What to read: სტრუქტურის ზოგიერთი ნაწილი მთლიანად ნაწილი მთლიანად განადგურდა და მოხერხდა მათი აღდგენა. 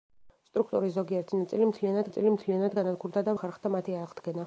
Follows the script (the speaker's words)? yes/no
yes